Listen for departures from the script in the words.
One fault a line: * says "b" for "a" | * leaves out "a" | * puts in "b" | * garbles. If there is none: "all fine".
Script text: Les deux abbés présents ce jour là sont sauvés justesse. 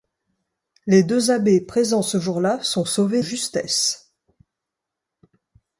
all fine